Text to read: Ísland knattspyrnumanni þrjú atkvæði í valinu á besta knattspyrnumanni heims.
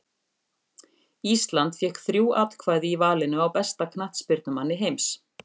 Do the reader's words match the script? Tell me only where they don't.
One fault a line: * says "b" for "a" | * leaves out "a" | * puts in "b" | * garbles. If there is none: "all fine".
* says "fékk" for "knattspyrnumanni"